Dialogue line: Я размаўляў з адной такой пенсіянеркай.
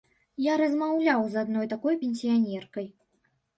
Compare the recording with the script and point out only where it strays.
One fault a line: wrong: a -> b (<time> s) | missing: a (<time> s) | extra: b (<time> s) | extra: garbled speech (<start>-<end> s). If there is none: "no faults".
no faults